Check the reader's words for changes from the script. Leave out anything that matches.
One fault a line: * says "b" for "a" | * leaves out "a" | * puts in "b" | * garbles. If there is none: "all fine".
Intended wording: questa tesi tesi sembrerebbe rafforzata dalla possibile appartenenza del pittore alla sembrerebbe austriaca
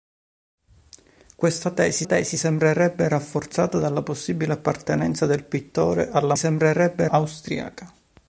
all fine